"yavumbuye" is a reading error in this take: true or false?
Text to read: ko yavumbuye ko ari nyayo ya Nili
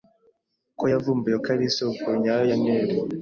false